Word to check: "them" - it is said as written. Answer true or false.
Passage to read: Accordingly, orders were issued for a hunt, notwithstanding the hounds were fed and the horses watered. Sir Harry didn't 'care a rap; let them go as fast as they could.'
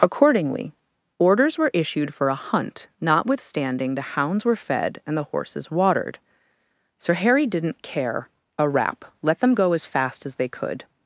true